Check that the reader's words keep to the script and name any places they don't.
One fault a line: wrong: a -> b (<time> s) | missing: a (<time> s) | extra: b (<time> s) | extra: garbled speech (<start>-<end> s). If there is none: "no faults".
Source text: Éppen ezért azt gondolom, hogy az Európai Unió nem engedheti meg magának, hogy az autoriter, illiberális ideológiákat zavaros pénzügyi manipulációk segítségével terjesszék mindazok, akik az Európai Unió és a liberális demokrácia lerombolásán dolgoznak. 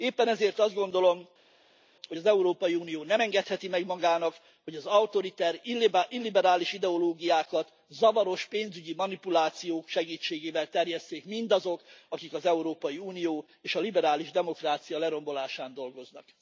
no faults